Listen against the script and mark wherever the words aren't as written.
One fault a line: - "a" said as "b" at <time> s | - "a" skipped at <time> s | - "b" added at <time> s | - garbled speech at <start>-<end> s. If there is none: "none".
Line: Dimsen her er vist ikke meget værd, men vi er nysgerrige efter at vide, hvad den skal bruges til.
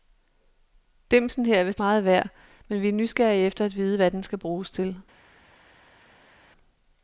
- "ikke" skipped at 1.8 s